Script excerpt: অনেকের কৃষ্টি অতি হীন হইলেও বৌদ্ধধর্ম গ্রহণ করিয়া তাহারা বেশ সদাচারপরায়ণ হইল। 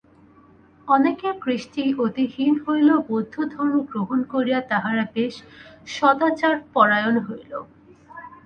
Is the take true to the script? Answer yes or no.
yes